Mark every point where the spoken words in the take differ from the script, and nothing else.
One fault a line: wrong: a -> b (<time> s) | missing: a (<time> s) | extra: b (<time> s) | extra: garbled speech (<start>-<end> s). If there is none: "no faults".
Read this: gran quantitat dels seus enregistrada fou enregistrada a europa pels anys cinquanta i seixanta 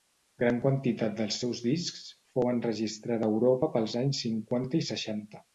wrong: enregistrada -> discs (1.7 s)